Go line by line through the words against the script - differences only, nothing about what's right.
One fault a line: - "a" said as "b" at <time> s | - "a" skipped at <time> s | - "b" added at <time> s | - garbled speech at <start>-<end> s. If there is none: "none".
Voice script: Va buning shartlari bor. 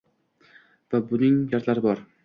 none